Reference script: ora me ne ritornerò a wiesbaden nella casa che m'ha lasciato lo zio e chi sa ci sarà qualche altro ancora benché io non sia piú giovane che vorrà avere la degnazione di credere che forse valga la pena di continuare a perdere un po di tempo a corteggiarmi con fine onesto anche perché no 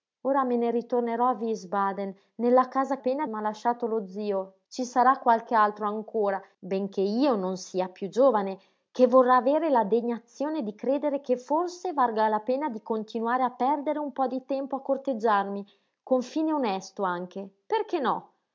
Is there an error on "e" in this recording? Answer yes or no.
yes